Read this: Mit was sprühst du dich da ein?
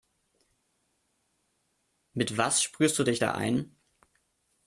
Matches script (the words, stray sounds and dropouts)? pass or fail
pass